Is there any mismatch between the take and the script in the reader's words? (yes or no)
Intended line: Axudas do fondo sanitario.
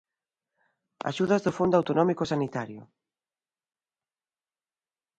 yes